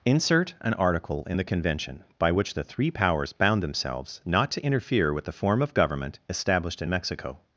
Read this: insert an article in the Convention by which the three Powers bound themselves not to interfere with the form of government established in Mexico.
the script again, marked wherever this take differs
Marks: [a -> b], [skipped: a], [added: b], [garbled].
insert an article in the Convention by which the three Powers bound themselves not to interfere with the form of government established in Mexico.